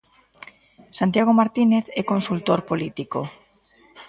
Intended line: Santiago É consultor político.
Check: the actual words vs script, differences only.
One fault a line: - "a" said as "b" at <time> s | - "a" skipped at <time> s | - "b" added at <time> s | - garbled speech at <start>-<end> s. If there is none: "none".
- "Martínez" added at 1.4 s